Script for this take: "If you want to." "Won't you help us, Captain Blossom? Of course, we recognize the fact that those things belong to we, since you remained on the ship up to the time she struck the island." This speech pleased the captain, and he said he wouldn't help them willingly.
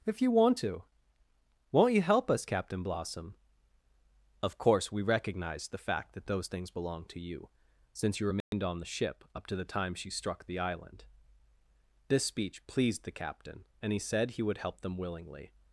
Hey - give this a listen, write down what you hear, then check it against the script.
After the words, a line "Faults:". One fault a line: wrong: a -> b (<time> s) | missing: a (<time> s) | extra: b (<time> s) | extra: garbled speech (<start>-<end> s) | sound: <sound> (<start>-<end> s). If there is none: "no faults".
"If you want to." "Won't you help us, Captain Blossom? Of course, we recognize the fact that those things belong to you, since you remained on the ship up to the time she struck the island." This speech pleased the captain, and he said he would help them willingly.
Faults:
wrong: we -> you (7.2 s)
sound: dropout (8.4-8.5 s)
wrong: wouldn't -> would (14.4 s)